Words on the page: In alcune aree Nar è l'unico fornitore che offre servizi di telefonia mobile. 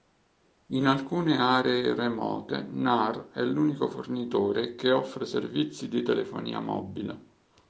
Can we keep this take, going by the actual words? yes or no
no